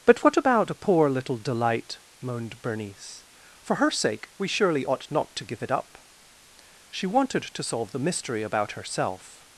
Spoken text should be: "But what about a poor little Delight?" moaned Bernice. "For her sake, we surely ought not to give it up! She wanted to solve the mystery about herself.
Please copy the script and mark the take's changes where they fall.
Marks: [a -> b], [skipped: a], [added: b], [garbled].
"But what about a poor little Delight?" moaned Bernice. "For her sake, we surely ought not to give it up! She wanted to solve the mystery about herself.